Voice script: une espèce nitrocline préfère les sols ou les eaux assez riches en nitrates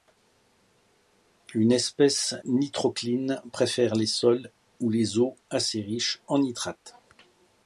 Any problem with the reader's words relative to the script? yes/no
no